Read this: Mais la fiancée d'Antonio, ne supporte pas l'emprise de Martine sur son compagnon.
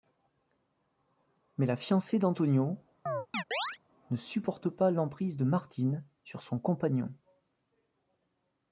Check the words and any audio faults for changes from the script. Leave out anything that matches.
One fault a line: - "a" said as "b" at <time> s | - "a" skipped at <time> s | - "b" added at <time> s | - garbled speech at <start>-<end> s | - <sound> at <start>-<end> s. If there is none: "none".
- chirp at 3.1-3.8 s